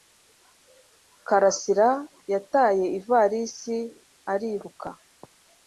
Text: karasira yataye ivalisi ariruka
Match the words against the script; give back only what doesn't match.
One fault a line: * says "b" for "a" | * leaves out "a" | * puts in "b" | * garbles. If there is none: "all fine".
all fine